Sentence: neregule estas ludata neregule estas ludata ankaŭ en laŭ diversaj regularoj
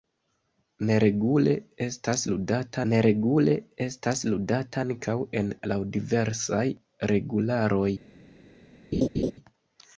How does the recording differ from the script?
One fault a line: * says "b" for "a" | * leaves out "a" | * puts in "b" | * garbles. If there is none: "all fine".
all fine